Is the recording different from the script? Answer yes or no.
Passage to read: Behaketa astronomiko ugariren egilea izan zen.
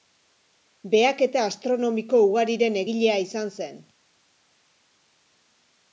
no